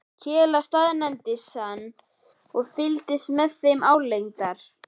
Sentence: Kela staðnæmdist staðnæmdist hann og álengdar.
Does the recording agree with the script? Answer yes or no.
no